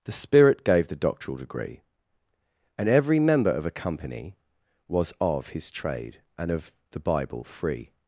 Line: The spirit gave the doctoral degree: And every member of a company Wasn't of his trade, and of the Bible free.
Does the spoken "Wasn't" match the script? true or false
false